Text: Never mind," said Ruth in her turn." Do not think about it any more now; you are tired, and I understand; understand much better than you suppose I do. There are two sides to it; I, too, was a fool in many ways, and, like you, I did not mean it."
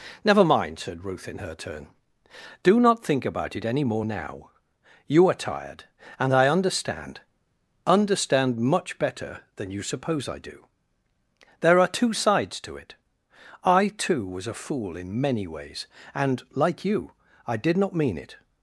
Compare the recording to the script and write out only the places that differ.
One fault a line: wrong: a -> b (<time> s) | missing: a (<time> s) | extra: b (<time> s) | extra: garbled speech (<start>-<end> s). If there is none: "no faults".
no faults